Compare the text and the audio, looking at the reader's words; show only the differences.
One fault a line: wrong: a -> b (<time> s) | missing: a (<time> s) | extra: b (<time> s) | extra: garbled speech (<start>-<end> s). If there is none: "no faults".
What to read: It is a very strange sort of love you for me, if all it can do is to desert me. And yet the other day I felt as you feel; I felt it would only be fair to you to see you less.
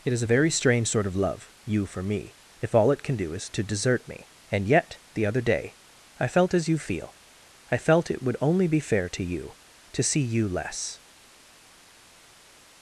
no faults